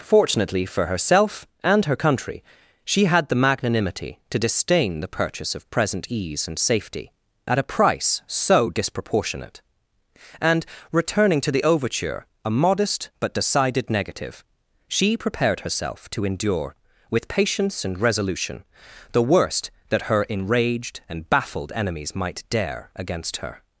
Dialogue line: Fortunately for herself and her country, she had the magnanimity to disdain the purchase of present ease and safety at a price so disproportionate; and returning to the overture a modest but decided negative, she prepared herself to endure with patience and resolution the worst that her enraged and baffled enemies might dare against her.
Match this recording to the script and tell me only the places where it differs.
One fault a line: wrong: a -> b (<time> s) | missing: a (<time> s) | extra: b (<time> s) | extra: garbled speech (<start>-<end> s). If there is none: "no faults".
no faults